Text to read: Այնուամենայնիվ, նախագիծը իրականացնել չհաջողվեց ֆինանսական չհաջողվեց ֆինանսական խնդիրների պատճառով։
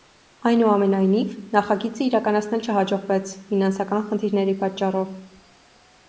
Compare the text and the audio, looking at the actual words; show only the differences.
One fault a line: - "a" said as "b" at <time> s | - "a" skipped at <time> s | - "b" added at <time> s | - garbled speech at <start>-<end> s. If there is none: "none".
- "չհաջողվեց ֆինանսական" skipped at 4.1 s